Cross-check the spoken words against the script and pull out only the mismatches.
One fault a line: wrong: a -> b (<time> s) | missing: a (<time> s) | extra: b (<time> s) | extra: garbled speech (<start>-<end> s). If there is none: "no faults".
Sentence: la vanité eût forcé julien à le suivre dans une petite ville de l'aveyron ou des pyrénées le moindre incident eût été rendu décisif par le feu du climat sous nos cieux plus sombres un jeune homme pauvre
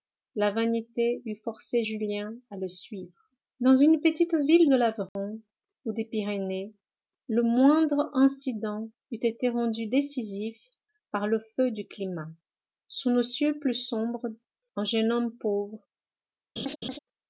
no faults